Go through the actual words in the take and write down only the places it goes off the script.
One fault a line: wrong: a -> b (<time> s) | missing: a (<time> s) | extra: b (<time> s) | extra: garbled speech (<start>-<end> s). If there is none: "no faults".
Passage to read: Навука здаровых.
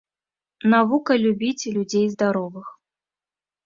extra: любіць людзей (1.2 s)